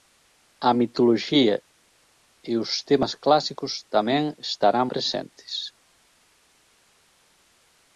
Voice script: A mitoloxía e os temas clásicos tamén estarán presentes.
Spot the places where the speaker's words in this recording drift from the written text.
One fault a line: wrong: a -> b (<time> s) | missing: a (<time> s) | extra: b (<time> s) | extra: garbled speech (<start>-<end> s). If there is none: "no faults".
no faults